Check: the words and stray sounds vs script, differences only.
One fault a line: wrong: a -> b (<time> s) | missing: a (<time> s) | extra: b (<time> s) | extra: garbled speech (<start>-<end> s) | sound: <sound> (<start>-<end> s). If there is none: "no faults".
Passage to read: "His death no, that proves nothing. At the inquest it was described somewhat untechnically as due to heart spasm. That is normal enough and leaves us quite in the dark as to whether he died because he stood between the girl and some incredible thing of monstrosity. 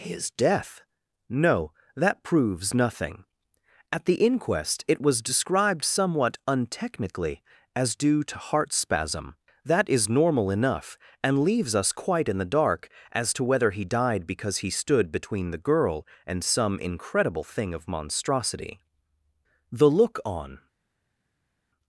extra: The look on (19.7 s)